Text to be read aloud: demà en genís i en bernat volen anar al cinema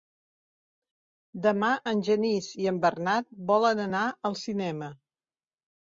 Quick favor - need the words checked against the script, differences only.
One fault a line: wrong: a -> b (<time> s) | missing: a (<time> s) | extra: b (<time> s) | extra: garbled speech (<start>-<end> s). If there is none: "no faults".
no faults